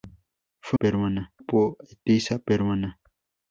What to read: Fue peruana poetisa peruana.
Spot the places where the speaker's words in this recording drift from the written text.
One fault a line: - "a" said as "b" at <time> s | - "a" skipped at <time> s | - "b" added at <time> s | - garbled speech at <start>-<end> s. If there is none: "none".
none